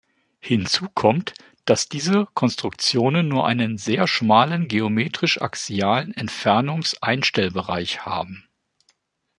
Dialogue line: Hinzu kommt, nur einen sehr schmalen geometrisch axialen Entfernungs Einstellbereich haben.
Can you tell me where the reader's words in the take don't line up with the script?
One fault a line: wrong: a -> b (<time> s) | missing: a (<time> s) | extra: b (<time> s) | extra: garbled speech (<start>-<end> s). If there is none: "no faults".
extra: dass diese Konstruktionen (1.6 s)